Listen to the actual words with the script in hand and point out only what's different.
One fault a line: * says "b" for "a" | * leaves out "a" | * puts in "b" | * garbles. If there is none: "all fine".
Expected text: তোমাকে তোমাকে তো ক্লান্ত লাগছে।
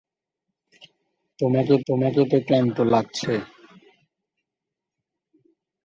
all fine